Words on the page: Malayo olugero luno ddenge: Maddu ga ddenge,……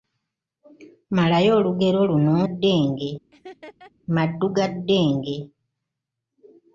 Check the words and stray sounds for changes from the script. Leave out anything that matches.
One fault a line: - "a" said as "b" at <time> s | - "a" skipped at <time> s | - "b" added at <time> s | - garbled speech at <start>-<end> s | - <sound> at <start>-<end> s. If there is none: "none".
- laugh at 3.3-3.9 s